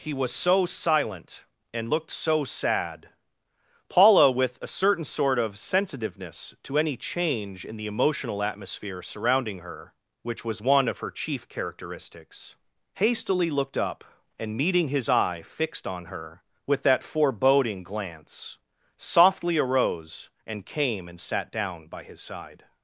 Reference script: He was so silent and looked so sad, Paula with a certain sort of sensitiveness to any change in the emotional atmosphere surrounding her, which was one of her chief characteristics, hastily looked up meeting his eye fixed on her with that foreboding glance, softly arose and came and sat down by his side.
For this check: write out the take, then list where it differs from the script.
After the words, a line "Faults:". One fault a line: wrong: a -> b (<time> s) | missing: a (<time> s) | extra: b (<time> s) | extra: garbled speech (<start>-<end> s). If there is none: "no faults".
He was so silent and looked so sad, Paula with a certain sort of sensitiveness to any change in the emotional atmosphere surrounding her, which was one of her chief characteristics, hastily looked up and meeting his eye fixed on her with that foreboding glance, softly arose and came and sat down by his side.
Faults:
extra: and (14.4 s)